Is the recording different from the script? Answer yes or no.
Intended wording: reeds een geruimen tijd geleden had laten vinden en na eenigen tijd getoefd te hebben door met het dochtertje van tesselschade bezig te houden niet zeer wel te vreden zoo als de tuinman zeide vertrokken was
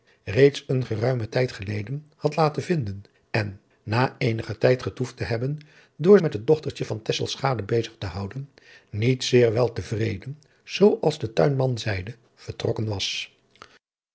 no